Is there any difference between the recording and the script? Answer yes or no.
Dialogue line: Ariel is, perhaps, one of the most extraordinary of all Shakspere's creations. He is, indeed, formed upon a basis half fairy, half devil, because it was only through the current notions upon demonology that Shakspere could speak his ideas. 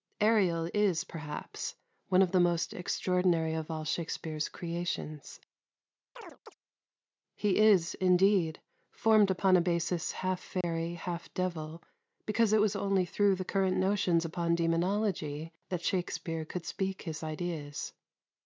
no